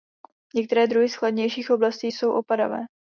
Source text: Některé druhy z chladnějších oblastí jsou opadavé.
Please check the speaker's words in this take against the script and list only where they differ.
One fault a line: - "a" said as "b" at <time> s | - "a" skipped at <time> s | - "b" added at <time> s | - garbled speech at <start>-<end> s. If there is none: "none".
none